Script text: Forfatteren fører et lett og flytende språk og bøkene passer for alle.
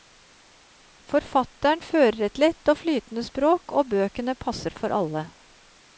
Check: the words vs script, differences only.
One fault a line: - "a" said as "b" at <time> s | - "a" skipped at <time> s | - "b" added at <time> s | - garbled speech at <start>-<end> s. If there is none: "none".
none